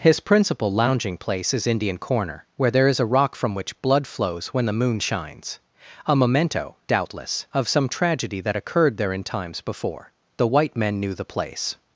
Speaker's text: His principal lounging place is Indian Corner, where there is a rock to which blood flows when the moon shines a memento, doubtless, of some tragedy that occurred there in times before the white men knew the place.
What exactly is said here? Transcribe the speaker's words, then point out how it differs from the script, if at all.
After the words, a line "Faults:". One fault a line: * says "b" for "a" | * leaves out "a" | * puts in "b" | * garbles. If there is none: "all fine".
His principal lounging place is Indian Corner, where there is a rock from which blood flows when the moon shines a memento, doubtless, of some tragedy that occurred there in times before the white men knew the place.
Faults:
* says "from" for "to"